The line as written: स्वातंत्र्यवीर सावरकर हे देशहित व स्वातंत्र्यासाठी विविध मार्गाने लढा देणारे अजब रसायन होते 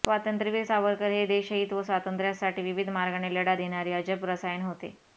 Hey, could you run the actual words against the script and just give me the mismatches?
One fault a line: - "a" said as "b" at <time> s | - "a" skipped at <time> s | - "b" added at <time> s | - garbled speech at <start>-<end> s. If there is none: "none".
none